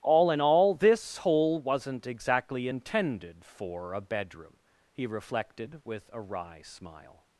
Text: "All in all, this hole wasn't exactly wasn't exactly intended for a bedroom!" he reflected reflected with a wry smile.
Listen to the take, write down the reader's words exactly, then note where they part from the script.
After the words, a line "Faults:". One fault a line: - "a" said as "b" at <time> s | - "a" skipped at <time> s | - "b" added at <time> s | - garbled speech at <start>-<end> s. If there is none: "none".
"All in all, this hole wasn't exactly intended for a bedroom!" he reflected with a wry smile.
Faults:
- "wasn't exactly" skipped at 2.7 s
- "reflected" skipped at 5.8 s